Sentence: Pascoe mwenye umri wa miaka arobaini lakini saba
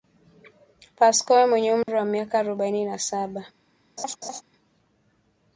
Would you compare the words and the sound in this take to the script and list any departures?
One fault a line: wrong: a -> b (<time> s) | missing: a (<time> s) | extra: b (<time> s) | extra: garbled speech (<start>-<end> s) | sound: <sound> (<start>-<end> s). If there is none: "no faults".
sound: dropout (1.8-1.9 s)
wrong: lakini -> na (2.9 s)
sound: laugh (4.0-4.4 s)